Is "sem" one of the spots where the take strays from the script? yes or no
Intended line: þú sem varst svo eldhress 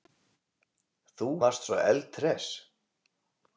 yes